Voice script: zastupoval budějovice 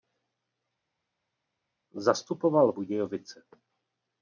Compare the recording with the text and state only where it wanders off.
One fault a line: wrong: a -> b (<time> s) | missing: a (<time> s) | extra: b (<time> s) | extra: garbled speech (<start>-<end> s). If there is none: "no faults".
no faults